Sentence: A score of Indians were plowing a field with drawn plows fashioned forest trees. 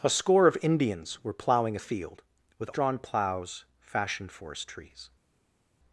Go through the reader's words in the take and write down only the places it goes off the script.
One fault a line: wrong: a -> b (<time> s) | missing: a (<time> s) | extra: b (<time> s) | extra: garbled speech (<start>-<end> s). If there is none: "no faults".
no faults